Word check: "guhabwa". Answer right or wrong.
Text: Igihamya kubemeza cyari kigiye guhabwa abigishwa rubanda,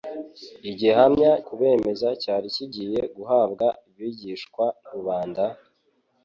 right